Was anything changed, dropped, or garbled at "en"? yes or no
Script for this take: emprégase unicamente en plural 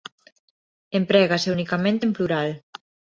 no